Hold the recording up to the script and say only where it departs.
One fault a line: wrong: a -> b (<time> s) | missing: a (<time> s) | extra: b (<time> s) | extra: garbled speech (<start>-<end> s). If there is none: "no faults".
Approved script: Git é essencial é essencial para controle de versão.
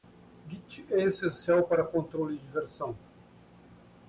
missing: é essencial (1.7 s)